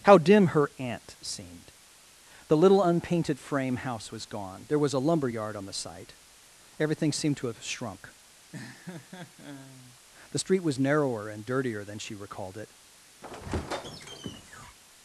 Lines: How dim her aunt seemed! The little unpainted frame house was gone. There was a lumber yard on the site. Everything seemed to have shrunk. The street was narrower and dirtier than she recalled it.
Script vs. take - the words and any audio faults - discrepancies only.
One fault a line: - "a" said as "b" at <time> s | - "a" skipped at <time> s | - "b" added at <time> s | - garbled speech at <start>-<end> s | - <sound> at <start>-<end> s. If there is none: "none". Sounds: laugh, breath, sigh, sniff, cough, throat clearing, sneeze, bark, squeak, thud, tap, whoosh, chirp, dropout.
- laugh at 8.5-10.0 s
- squeak at 13.2-14.8 s